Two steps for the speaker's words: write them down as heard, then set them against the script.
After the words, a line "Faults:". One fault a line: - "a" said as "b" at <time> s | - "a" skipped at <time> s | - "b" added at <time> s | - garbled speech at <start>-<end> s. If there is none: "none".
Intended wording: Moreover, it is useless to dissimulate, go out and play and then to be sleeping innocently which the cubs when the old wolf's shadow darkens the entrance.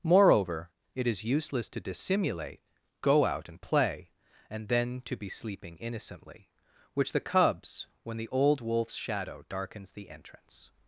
Moreover, it is useless to dissimulate, go out and play and then to be sleeping innocently which the cubs when the old wolf's shadow darkens the entrance.
Faults:
none